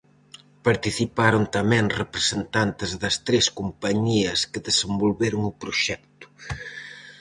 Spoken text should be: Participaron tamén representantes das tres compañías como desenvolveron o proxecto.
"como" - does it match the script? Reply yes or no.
no